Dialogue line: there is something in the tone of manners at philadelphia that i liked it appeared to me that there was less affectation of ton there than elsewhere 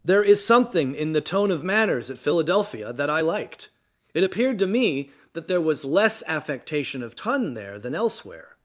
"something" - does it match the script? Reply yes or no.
yes